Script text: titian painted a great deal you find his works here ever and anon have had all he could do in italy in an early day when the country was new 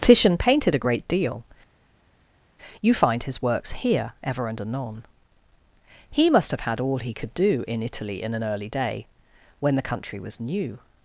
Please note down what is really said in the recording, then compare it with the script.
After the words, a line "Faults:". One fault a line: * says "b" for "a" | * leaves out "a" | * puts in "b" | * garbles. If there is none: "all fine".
titian painted a great deal you find his works here ever and anon he must have had all he could do in italy in an early day when the country was new
Faults:
* puts in "he must"